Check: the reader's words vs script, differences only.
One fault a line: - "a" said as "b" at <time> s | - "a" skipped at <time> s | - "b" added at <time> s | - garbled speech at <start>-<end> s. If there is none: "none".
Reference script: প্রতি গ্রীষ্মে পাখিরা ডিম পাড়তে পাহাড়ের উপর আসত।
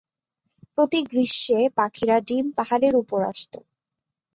- "পাড়তে" skipped at 2.5 s